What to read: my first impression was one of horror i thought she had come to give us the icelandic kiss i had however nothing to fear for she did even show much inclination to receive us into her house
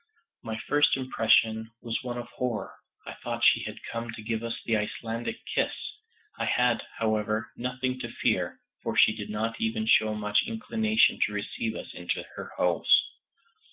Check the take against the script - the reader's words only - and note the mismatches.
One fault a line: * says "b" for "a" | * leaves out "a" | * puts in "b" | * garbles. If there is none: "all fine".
* puts in "not"